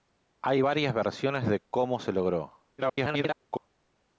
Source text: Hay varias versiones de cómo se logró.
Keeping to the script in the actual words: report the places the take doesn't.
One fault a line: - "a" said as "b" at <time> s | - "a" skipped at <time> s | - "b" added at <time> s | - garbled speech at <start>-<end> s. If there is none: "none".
- garbled speech at 2.8-3.7 s